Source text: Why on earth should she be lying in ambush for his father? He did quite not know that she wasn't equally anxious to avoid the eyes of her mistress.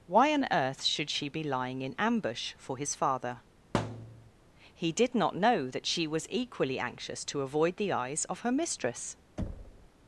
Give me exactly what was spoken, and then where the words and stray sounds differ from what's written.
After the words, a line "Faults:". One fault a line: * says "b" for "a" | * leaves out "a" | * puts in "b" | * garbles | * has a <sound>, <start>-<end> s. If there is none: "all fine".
Why on earth should she be lying in ambush for his father? He did not know that she was equally anxious to avoid the eyes of her mistress.
Faults:
* has a thud, 3.7-4.3 s
* leaves out "quite"
* says "was" for "wasn't"
* has a thud, 9.4-9.9 s